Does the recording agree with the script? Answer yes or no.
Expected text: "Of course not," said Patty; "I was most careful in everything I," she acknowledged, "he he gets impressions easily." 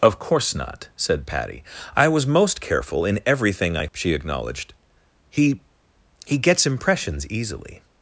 yes